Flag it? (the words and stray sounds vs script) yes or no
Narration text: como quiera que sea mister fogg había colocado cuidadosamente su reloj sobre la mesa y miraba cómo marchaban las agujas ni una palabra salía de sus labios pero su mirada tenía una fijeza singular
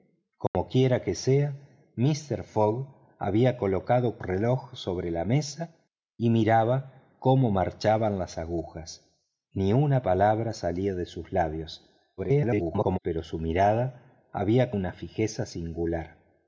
yes